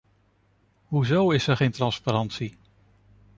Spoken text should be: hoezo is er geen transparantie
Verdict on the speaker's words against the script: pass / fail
pass